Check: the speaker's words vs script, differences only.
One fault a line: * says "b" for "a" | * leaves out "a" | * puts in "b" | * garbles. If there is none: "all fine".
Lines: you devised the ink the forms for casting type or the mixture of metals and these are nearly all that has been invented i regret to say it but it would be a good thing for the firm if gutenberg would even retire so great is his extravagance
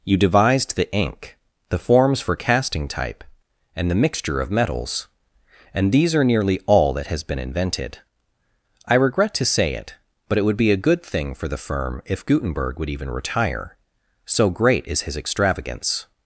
* says "and" for "or"